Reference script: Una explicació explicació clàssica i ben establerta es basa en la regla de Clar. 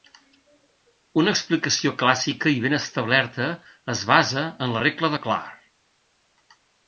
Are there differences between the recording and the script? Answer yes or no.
yes